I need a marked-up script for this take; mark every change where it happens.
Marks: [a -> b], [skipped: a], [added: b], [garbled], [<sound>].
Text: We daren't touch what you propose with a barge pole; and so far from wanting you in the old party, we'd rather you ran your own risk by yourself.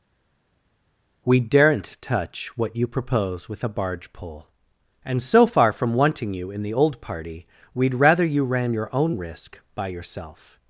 We daren't touch what you propose with a barge pole; and so far from wanting you in the old party, we'd rather you ran your own risk by yourself.